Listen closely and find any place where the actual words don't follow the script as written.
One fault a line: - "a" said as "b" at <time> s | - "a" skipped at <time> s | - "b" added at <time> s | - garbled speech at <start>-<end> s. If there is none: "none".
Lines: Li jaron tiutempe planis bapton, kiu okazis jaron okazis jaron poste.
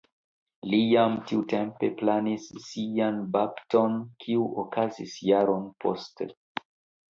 - "jaron" said as "jam" at 0.9 s
- "sian" added at 2.7 s
- "okazis jaron" skipped at 5.7 s